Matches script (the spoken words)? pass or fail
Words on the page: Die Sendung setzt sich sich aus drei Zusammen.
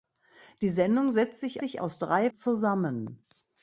pass